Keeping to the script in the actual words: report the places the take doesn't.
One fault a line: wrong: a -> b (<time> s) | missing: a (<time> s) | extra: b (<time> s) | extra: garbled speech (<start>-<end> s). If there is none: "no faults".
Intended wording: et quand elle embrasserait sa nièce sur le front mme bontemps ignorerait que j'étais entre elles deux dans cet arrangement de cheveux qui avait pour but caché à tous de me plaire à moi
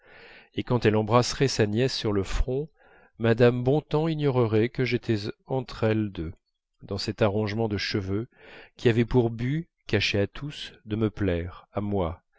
no faults